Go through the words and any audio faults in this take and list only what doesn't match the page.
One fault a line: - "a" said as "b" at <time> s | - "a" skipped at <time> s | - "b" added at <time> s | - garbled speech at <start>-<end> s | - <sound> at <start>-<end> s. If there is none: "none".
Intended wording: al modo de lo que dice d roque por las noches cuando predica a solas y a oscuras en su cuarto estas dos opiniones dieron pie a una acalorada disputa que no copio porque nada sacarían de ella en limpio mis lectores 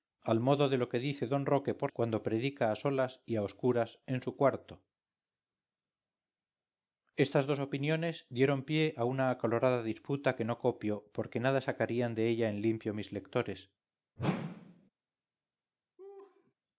- "las noches" skipped at 1.9 s
- whoosh at 14.2-14.9 s
- laugh at 16.0-16.5 s